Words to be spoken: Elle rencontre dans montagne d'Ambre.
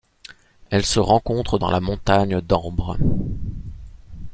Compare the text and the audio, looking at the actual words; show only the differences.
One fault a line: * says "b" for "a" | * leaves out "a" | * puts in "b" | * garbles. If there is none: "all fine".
* puts in "se"
* puts in "la"